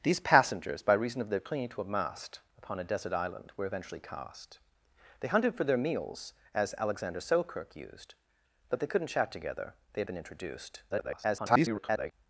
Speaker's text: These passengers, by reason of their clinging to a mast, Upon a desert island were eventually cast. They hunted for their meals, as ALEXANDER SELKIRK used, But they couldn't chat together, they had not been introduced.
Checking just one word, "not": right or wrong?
wrong